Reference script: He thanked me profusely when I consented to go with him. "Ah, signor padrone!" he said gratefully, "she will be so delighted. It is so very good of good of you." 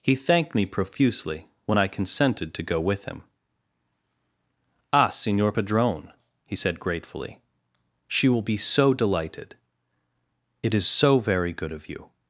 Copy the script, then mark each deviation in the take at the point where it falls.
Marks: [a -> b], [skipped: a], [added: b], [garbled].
He thanked me profusely when I consented to go with him. "Ah, signor padrone!" he said gratefully, "she will be so delighted. It is so very good of [skipped: good of] you."